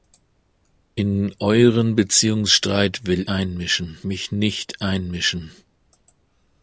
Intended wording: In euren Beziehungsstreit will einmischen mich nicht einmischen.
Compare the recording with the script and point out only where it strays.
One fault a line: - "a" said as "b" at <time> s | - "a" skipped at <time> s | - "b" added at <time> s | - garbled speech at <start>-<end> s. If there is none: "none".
none